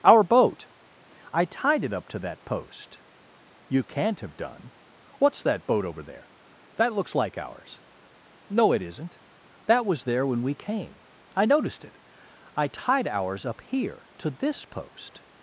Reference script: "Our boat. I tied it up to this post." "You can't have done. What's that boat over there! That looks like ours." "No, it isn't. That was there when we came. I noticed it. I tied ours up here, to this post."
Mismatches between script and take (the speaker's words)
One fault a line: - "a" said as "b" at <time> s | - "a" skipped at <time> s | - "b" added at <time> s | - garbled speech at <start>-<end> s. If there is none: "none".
- "this" said as "that" at 2.2 s